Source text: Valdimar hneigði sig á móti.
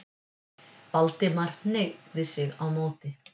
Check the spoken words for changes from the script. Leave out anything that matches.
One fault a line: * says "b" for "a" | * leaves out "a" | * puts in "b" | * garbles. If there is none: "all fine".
all fine